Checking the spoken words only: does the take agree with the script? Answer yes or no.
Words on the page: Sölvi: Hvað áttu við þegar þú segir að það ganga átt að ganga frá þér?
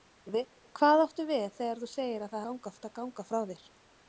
yes